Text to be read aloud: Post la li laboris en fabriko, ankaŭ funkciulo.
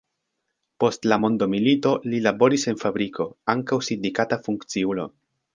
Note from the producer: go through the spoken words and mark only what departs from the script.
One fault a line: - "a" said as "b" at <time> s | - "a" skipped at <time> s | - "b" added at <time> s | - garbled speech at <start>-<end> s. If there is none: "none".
- "mondomilito" added at 1.2 s
- "sindikata" added at 3.9 s